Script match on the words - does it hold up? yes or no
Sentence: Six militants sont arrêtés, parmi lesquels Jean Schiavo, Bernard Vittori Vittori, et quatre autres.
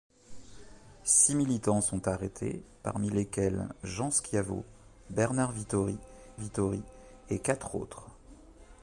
yes